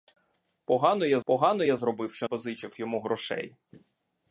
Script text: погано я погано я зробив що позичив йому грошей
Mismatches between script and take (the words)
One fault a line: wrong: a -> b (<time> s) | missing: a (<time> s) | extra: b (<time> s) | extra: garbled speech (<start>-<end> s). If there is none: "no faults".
no faults